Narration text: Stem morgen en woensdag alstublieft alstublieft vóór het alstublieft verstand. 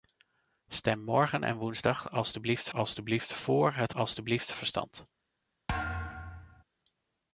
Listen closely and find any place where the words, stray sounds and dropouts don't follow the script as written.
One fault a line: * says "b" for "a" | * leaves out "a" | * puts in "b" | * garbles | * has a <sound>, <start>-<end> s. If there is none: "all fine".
* has a thud, 5.7-6.6 s